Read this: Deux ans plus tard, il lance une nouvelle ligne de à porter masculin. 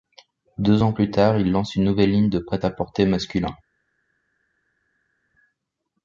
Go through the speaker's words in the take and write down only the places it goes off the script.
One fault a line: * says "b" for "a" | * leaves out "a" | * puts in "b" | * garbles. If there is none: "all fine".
* puts in "prêt"